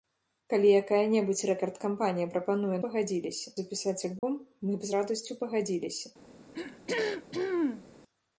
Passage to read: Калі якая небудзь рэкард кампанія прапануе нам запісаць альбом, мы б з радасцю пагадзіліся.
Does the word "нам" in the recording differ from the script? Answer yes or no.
yes